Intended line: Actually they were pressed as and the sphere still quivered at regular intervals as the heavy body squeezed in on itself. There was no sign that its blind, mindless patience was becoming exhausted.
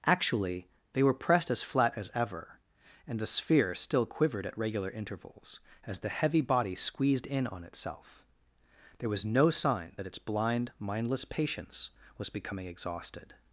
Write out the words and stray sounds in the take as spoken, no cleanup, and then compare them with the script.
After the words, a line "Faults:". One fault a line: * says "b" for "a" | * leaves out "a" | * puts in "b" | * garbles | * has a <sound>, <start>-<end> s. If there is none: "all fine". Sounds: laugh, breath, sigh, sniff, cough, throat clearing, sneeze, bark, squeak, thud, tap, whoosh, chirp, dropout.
Actually they were pressed as flat as ever, and the sphere still quivered at regular intervals as the heavy body squeezed in on itself. There was no sign that its blind, mindless patience was becoming exhausted.
Faults:
* puts in "flat as ever"